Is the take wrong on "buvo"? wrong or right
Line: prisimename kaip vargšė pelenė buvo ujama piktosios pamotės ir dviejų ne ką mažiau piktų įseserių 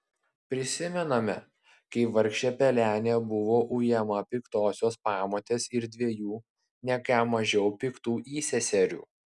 right